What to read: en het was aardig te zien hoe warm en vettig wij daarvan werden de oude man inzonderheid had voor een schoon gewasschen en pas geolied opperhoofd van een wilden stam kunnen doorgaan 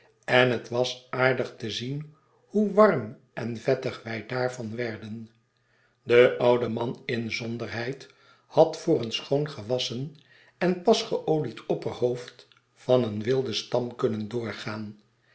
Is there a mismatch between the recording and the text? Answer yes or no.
no